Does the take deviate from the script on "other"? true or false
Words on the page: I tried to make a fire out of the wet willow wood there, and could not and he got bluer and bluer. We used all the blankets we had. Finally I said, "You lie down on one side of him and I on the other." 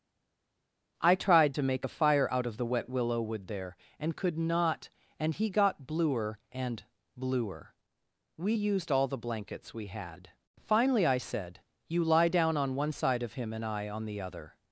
false